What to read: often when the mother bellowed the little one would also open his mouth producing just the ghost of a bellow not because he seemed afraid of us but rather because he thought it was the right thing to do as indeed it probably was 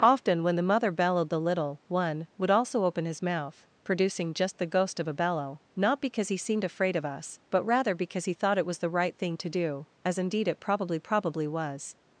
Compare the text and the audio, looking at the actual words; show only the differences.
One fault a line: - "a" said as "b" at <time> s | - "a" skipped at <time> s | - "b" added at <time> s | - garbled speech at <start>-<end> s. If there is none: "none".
- "probably" added at 11.0 s